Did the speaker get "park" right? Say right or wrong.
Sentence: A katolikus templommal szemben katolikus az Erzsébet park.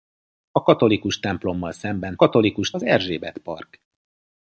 right